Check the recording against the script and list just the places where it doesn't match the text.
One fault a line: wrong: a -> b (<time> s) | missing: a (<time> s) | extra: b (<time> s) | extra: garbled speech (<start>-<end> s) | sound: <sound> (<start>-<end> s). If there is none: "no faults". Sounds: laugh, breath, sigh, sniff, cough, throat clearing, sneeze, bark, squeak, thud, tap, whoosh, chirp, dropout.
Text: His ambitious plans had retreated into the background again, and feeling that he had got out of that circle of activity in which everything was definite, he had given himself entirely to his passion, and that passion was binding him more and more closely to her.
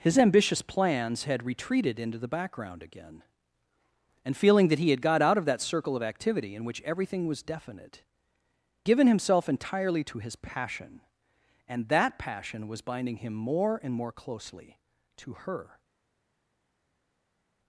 missing: he had (8.0 s)